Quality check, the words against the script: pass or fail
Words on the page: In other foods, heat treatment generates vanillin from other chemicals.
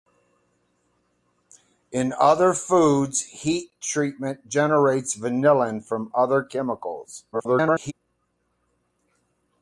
fail